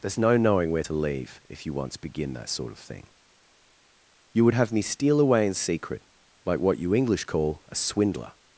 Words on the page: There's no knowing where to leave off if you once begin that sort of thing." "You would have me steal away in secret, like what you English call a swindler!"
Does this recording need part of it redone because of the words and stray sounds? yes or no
yes